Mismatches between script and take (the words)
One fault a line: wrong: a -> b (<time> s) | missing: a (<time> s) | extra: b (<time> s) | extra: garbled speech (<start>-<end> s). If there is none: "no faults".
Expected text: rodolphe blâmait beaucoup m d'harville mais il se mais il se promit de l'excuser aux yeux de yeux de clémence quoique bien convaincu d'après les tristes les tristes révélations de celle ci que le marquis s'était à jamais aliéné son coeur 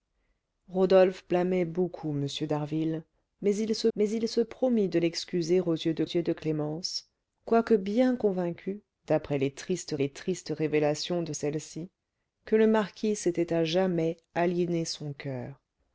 no faults